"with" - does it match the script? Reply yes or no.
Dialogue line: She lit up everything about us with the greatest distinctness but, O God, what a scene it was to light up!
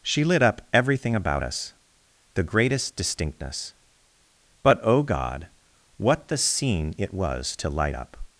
no